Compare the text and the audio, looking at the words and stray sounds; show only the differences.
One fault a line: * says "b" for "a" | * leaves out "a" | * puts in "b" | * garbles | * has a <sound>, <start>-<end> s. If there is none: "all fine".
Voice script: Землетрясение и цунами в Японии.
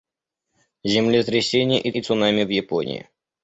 * puts in "и"